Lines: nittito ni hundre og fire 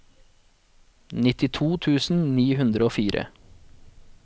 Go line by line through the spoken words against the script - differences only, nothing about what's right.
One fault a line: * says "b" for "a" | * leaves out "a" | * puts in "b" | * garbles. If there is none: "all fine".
* puts in "tusen"